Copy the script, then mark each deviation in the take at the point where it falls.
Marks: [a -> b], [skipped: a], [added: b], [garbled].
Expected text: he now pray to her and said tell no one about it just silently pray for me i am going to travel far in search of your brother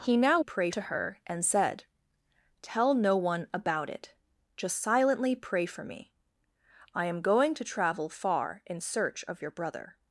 he now pray to her and said tell no one about it just silently pray for me i am going to travel far in search of your brother